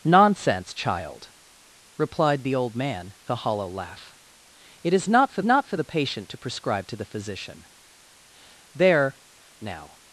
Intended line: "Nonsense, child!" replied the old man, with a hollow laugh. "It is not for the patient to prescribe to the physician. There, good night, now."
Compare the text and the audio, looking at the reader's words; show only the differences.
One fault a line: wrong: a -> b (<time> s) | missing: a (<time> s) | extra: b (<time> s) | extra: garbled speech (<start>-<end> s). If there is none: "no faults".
missing: with (3.1 s)
extra: not for (5.4 s)
missing: good night (9.2 s)